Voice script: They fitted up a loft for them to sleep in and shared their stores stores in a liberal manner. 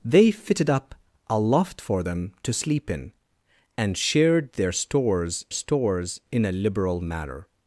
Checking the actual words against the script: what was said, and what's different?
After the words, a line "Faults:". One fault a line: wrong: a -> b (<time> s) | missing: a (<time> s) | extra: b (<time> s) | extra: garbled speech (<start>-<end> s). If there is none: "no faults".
They fitted up a loft for them to sleep in and shared their stores stores in a liberal manner.
Faults:
no faults